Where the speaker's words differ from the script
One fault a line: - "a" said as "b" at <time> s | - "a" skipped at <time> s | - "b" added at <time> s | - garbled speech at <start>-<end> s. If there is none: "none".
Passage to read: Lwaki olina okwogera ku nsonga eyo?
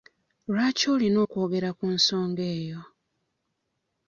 none